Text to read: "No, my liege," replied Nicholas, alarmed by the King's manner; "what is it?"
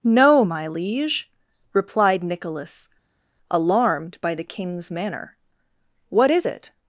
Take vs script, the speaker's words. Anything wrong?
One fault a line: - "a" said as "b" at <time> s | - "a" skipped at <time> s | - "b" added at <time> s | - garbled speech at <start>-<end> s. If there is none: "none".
none